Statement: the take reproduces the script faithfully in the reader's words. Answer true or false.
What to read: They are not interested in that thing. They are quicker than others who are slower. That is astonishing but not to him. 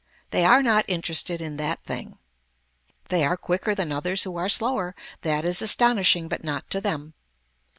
false